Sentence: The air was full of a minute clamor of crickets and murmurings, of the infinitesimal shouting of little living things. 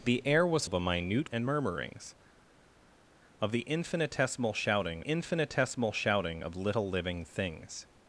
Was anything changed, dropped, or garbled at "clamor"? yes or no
yes